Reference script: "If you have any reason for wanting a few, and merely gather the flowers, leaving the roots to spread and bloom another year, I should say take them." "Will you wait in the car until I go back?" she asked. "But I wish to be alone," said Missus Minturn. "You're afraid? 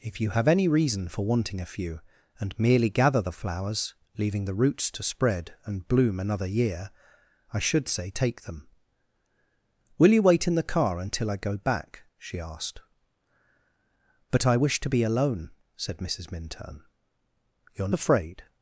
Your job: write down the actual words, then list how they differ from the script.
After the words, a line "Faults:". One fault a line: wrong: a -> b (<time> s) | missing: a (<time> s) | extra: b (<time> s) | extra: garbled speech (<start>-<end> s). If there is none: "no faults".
"If you have any reason for wanting a few, and merely gather the flowers, leaving the roots to spread and bloom another year, I should say take them." "Will you wait in the car until I go back?" she asked. "But I wish to be alone," said Missus Minturn. "You're afraid?
Faults:
no faults